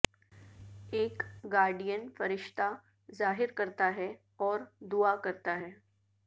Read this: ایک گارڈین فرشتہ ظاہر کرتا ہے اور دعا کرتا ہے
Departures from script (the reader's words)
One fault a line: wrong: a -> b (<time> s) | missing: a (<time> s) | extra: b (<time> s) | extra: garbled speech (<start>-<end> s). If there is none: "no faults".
no faults